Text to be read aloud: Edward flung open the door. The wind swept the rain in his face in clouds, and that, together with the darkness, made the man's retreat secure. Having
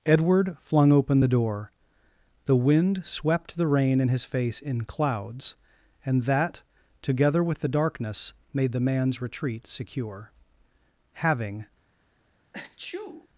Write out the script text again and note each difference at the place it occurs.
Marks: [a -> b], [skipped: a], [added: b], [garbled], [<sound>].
Edward flung open the door. The wind swept the rain in his face in clouds, and that, together with the darkness, made the man's retreat secure. Having [sneeze]